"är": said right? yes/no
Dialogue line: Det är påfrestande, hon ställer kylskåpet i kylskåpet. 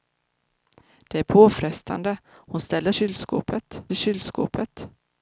yes